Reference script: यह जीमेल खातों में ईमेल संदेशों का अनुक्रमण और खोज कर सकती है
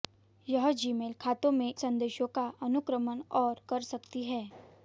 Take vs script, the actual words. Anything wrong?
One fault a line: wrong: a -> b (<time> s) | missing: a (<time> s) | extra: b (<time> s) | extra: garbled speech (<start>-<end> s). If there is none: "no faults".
missing: ईमेल (1.7 s)
missing: खोज (3.6 s)